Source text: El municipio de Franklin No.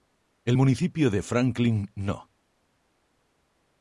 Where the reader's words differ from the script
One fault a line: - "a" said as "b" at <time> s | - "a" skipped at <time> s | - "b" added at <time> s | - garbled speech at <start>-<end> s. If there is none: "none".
none